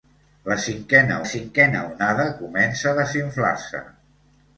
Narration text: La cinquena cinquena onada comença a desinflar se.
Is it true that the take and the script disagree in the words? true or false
false